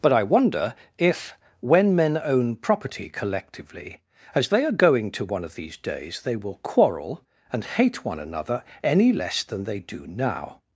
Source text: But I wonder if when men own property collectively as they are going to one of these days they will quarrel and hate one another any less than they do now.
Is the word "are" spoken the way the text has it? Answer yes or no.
yes